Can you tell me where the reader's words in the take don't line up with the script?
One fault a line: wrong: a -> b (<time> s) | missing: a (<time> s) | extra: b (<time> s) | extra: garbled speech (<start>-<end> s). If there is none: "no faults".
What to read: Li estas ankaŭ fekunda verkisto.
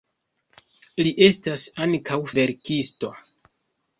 missing: fekunda (2.2 s)